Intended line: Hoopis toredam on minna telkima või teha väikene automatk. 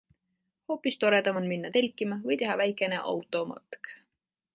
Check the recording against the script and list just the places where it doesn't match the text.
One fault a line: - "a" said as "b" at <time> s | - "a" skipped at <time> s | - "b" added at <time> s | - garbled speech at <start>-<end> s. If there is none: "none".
none